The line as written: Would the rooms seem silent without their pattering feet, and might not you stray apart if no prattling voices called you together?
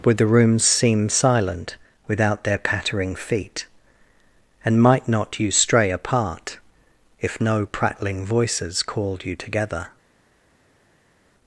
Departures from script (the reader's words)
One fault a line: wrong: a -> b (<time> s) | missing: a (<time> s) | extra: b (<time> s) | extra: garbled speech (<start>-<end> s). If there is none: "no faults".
no faults